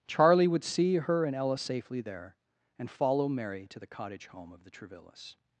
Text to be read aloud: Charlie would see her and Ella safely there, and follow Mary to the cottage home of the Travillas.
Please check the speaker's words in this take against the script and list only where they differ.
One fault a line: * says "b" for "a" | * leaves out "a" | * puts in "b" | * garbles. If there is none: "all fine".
all fine